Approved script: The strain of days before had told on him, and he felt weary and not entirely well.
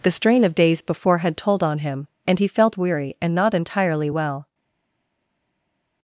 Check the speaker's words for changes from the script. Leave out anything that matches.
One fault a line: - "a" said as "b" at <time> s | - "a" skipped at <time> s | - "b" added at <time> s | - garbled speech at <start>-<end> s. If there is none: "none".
none